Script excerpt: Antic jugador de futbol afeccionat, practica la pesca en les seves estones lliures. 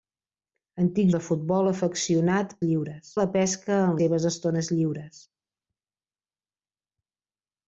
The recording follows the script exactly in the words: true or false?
false